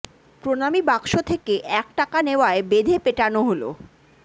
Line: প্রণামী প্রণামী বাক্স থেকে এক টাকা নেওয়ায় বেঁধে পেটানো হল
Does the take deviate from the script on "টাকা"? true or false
false